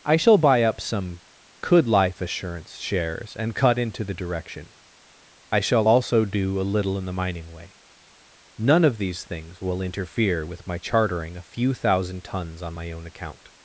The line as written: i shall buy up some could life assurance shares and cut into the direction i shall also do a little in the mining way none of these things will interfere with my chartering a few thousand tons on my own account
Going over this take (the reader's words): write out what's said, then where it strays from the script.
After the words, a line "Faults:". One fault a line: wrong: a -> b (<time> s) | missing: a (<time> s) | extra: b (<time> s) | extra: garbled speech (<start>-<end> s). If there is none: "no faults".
i shall buy up some could life assurance shares and cut into the direction i shall also do a little in the mining way none of these things will interfere with my chartering a few thousand tons on my own account
Faults:
no faults